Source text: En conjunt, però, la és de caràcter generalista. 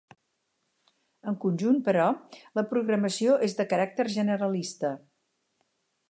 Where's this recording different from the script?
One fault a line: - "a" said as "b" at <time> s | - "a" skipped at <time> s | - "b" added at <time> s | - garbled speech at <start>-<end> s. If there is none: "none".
- "programació" added at 2.7 s